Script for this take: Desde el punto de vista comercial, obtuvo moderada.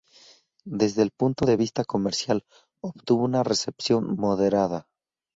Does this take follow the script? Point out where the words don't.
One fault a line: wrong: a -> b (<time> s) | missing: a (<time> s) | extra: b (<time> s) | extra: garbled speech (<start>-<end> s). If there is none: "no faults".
extra: una recepción (3.2 s)